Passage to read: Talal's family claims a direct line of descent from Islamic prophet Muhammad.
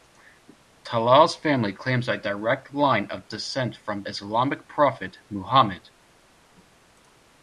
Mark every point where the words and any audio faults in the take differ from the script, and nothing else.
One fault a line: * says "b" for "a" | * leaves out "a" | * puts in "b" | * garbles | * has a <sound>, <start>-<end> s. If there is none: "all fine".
all fine